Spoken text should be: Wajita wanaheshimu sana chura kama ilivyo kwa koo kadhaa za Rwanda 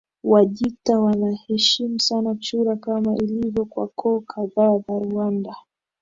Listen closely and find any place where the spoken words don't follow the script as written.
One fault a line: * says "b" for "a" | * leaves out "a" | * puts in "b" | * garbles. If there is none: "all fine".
all fine